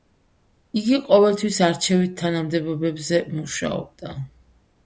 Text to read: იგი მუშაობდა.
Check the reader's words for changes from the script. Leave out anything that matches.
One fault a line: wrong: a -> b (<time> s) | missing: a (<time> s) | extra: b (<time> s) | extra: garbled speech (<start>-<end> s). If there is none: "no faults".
extra: ყოველთვის არჩევით თანამდებობებზე (1.1 s)